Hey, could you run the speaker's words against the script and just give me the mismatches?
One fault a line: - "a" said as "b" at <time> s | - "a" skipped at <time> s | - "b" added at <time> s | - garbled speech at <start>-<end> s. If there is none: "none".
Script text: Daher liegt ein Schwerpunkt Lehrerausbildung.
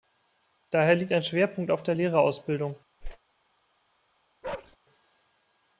- "auf der" added at 1.7 s